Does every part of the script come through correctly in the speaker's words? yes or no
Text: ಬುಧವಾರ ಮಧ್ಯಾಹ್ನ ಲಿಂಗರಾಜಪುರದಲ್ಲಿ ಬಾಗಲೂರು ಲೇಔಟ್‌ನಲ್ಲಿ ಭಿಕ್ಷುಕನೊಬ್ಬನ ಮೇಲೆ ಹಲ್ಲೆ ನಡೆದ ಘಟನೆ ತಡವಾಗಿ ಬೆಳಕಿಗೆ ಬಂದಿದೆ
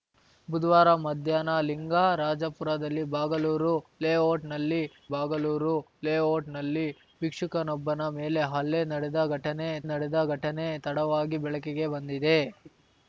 no